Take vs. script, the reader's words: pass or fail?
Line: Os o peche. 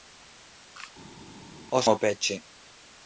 pass